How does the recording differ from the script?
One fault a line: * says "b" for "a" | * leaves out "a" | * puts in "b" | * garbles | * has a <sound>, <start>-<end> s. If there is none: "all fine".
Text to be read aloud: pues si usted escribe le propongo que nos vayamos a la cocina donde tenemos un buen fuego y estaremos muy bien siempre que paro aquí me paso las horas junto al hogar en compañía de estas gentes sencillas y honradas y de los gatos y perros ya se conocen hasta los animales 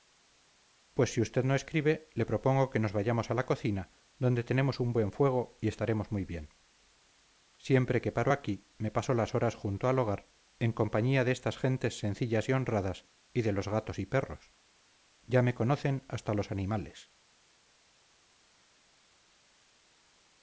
* puts in "no"
* says "me" for "se"